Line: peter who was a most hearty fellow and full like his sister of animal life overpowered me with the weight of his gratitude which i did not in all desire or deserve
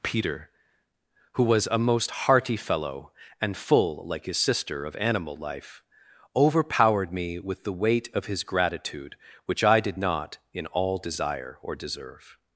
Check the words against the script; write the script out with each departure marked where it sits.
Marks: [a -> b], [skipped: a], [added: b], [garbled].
peter who was a most hearty fellow and full like his sister of animal life overpowered me with the weight of his gratitude which i did not in all desire or deserve